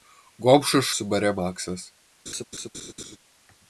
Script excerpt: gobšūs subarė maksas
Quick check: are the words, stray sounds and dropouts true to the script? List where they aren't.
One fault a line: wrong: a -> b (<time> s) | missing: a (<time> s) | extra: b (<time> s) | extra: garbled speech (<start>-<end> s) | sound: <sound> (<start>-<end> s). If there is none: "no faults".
sound: laugh (2.3-3.2 s)